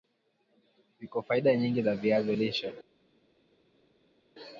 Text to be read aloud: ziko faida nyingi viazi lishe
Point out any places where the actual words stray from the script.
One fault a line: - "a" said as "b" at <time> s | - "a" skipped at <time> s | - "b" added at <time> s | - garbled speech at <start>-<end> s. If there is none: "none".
- "za" added at 1.8 s